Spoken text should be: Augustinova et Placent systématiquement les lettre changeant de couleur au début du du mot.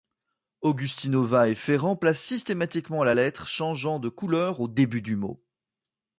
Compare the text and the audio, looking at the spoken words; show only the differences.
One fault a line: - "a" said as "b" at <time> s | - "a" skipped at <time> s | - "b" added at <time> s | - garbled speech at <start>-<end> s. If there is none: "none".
- "Ferrand" added at 1.5 s
- "les" said as "la" at 3.0 s
- "du" skipped at 5.2 s